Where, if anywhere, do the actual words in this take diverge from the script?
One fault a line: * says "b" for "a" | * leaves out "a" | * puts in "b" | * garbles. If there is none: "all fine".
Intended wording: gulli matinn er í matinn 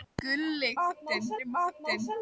all fine